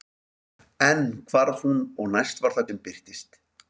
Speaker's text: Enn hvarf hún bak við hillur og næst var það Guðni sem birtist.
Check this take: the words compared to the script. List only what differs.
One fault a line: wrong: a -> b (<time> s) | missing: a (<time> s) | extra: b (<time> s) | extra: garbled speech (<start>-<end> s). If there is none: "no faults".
missing: bak við hillur (1.8 s)
missing: Guðni (2.7 s)